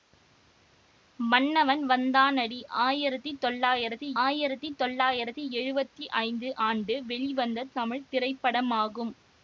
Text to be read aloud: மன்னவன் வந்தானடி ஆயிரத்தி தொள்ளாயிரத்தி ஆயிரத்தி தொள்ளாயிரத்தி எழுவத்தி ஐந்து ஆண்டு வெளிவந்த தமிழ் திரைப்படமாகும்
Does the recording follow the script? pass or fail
pass